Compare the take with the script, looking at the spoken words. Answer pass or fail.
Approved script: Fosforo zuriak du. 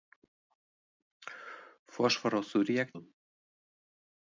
pass